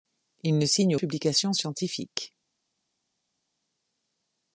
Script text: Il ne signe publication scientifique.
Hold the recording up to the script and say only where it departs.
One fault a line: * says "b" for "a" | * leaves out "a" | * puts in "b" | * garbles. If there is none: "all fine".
all fine